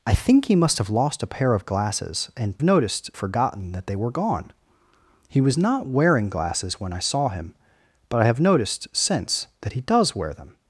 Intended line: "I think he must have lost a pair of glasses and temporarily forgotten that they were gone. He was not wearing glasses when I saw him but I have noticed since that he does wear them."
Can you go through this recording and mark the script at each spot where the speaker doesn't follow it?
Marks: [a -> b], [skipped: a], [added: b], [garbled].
"I think he must have lost a pair of glasses and [temporarily -> noticed] forgotten that they were gone. He was not wearing glasses when I saw him but I have noticed since that he does wear them."